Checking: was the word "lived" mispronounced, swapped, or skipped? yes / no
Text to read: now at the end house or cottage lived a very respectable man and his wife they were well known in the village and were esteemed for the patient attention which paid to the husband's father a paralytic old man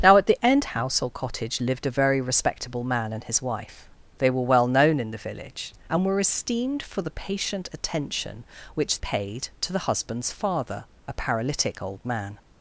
no